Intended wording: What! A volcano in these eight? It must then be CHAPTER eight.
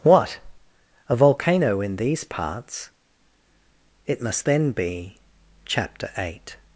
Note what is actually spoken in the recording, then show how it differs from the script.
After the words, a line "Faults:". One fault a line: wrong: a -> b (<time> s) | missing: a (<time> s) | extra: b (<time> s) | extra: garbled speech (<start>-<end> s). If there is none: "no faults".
What! A volcano in these parts? It must then be CHAPTER eight.
Faults:
wrong: eight -> parts (2.2 s)